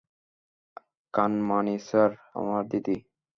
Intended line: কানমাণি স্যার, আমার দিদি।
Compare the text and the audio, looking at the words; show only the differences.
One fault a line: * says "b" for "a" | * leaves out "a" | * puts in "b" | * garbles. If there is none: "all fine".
all fine